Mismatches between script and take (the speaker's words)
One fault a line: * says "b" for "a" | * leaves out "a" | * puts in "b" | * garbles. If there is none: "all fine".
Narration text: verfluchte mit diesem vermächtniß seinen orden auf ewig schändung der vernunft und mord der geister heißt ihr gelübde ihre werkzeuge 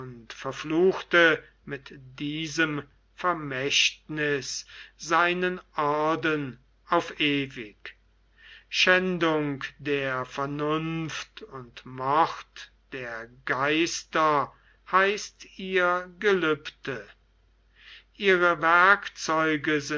all fine